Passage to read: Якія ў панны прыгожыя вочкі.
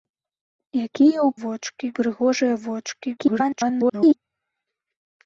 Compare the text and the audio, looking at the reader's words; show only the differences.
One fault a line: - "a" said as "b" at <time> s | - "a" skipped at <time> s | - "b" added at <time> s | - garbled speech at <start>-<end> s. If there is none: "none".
- "панны" said as "вочкі" at 1.4 s
- garbled speech at 3.2-4.1 s